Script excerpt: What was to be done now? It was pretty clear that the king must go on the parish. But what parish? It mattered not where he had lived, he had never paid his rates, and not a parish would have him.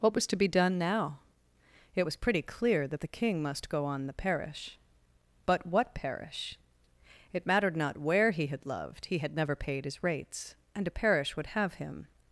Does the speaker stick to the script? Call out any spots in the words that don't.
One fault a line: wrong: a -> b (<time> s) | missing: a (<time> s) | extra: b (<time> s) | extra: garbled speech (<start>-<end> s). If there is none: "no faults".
wrong: lived -> loved (8.6 s)
missing: not (10.9 s)